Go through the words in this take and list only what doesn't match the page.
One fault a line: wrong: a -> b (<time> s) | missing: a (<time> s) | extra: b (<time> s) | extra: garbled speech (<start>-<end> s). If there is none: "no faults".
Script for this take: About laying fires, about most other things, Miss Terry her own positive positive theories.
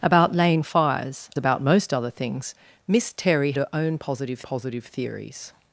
no faults